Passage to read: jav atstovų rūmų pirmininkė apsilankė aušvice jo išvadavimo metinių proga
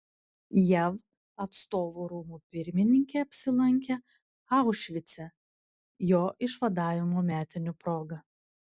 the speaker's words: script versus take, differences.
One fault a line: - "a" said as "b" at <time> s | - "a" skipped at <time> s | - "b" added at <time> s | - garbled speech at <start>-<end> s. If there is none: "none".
none